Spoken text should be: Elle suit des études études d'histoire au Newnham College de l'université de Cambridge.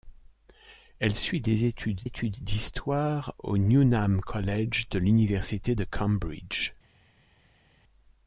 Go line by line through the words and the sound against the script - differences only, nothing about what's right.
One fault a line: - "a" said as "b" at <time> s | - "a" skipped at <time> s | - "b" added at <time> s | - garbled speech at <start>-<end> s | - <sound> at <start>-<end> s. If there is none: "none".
none